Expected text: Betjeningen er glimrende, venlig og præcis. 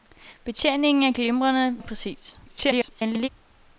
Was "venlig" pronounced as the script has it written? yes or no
no